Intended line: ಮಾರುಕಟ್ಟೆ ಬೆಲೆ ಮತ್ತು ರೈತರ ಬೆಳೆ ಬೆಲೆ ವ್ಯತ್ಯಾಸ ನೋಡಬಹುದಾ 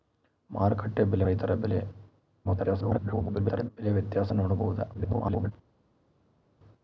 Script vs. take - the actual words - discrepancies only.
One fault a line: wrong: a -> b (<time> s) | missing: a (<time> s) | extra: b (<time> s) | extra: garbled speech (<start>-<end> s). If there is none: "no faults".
missing: ಮತ್ತು (1.2 s)
extra: garbled speech (2.4-3.7 s)
extra: garbled speech (4.9-5.5 s)